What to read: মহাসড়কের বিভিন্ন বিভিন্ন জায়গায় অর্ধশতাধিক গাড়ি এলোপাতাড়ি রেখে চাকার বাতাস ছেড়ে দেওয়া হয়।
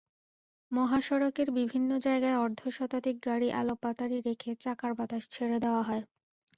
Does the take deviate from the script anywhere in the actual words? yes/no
yes